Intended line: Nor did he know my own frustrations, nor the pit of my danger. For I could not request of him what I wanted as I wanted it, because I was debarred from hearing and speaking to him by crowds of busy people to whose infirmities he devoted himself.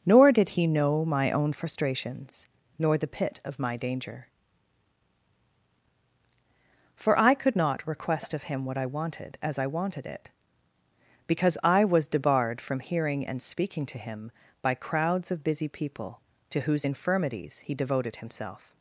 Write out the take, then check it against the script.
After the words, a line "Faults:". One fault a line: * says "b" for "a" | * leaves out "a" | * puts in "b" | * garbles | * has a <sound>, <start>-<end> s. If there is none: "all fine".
Nor did he know my own frustrations, nor the pit of my danger. For I could not request of him what I wanted as I wanted it, because I was debarred from hearing and speaking to him by crowds of busy people to whose infirmities he devoted himself.
Faults:
all fine